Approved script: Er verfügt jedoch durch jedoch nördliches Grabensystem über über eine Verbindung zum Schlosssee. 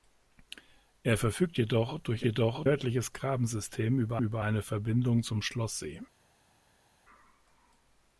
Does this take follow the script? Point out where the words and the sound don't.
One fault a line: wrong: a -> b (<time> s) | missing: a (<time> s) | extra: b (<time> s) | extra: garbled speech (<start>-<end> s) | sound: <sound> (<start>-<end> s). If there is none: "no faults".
no faults